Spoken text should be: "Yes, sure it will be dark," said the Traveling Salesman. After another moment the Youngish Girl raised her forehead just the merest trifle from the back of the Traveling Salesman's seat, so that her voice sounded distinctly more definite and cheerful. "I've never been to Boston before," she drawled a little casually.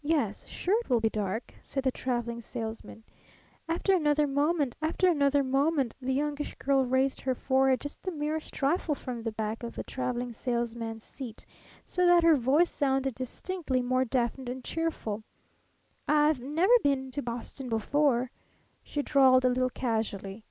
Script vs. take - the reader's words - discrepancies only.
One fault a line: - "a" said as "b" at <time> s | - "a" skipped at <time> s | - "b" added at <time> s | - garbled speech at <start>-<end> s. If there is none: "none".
- "after another moment" added at 4.8 s